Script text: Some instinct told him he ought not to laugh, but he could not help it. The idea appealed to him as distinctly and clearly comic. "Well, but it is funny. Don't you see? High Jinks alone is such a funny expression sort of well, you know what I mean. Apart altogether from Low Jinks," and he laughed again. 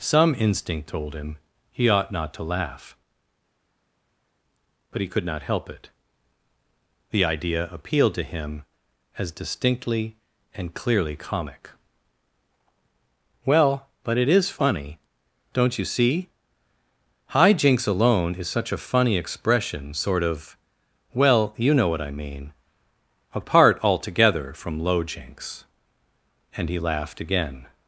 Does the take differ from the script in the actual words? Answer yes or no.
no